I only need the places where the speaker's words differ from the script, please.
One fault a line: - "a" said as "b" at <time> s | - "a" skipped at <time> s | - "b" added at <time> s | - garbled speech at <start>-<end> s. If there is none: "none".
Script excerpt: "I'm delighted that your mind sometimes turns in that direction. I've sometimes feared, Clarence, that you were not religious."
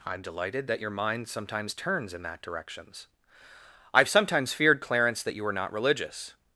- "direction" said as "directions" at 2.4 s